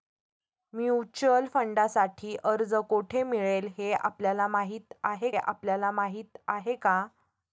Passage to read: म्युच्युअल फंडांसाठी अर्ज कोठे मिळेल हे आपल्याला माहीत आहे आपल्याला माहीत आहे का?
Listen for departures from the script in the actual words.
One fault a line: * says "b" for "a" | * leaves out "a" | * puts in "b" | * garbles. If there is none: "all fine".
all fine